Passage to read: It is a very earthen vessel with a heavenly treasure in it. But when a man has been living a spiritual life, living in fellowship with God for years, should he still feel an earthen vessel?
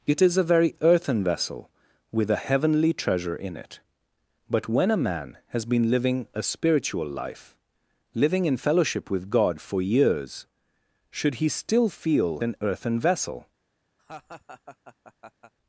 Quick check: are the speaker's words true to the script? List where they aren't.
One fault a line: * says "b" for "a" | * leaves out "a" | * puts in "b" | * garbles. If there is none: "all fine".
all fine